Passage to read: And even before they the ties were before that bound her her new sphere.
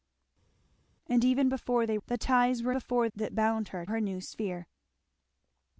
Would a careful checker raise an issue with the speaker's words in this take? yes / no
no